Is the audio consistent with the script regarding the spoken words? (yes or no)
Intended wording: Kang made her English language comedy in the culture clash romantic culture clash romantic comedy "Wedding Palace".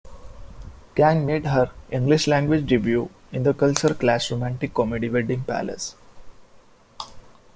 no